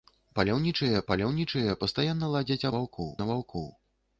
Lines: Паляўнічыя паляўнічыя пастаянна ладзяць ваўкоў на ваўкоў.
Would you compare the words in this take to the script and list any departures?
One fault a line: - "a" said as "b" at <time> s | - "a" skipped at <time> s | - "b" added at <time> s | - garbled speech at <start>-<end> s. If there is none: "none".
none